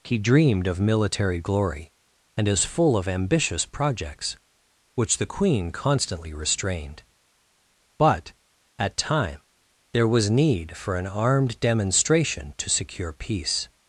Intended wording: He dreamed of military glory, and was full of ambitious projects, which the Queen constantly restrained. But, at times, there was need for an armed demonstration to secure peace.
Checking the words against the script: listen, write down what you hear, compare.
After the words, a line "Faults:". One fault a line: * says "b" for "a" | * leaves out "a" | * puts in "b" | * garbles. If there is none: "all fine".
He dreamed of military glory, and is full of ambitious projects, which the Queen constantly restrained. But, at time, there was need for an armed demonstration to secure peace.
Faults:
* says "is" for "was"
* says "time" for "times"